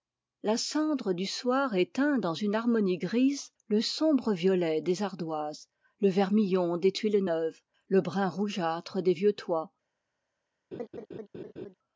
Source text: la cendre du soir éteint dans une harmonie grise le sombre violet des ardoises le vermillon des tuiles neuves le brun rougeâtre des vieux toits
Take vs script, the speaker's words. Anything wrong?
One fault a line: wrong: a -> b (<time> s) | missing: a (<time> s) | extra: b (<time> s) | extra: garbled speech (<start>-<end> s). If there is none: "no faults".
no faults